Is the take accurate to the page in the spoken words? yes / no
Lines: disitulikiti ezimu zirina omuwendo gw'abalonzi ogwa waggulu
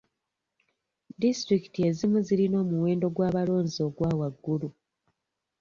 yes